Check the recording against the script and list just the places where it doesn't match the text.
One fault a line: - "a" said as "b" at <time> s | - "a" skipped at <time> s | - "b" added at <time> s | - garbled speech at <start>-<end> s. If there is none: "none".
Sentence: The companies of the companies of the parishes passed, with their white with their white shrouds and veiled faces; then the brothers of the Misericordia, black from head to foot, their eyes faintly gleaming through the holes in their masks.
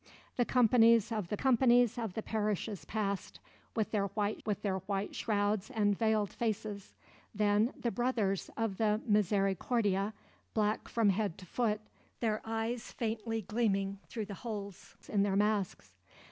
none